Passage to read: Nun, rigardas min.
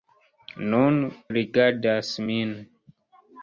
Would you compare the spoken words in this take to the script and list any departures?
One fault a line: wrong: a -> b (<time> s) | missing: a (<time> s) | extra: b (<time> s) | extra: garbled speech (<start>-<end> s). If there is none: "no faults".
no faults